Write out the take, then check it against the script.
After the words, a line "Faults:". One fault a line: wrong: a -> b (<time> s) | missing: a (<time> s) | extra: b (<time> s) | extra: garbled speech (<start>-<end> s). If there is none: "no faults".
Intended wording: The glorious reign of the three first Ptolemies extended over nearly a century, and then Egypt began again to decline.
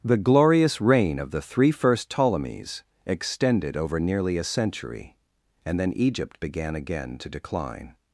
The glorious reign of the three first Ptolemies extended over nearly a century, and then Egypt began again to decline.
Faults:
no faults